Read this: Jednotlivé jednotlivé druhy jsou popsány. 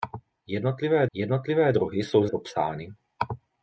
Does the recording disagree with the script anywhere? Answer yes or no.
no